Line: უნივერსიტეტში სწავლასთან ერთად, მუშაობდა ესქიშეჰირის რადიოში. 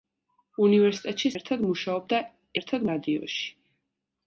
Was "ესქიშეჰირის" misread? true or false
true